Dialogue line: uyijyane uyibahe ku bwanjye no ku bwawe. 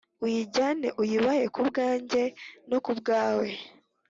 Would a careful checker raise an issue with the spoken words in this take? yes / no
no